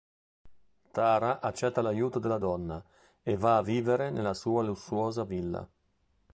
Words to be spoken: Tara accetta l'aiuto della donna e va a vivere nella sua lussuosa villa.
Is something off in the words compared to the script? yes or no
no